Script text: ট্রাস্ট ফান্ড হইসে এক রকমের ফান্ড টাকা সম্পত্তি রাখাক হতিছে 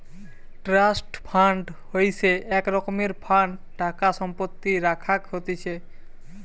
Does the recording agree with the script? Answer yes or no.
yes